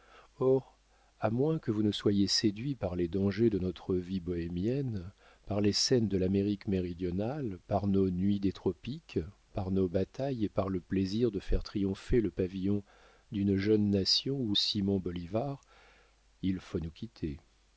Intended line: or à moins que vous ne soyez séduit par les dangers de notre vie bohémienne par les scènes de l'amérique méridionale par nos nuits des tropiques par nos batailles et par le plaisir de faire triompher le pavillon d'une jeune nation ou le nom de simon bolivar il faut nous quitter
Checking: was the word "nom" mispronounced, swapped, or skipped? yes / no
yes